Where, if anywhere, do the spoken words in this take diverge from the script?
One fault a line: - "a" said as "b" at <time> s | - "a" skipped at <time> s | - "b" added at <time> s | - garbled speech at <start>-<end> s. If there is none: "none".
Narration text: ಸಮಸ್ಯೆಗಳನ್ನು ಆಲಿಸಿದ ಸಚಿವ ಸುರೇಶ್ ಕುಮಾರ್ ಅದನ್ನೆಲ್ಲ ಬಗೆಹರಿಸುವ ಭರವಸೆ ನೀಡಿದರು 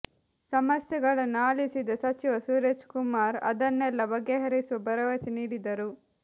none